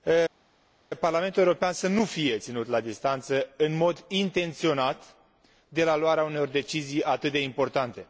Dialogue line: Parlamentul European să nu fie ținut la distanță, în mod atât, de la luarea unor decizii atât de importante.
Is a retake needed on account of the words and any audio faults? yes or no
yes